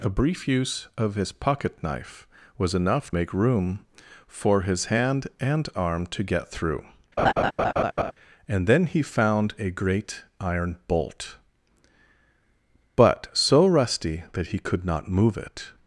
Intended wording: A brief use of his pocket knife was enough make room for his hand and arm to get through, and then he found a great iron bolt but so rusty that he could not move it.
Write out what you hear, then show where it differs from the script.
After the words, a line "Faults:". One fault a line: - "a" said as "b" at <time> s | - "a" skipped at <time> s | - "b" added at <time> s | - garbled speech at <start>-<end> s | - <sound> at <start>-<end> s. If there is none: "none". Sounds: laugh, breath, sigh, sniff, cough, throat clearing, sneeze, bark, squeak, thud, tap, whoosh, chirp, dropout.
A brief use of his pocket knife was enough make room for his hand and arm to get through, and then he found a great iron bolt but so rusty that he could not move it.
Faults:
- laugh at 7.2-8.1 s